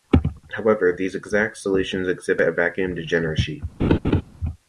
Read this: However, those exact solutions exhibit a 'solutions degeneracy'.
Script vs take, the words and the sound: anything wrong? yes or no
yes